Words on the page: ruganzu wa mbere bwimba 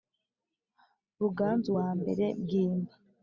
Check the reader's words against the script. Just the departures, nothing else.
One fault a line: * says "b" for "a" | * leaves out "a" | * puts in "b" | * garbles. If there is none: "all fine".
all fine